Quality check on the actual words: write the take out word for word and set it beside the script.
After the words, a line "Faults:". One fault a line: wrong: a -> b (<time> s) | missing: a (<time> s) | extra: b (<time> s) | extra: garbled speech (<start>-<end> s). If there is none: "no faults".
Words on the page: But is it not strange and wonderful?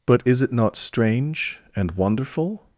But is it not strange and wonderful?
Faults:
no faults